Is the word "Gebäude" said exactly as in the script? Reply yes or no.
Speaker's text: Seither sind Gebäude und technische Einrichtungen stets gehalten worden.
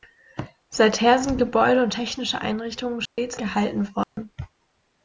yes